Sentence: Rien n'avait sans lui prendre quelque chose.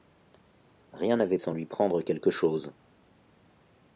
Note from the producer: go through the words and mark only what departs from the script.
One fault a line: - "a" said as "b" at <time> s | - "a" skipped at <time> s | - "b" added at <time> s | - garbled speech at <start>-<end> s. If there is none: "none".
none